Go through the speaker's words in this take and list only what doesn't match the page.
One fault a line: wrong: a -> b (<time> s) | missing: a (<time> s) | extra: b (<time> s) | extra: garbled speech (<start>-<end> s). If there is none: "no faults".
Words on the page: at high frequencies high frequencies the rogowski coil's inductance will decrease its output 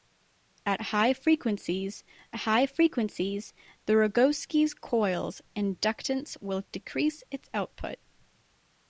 no faults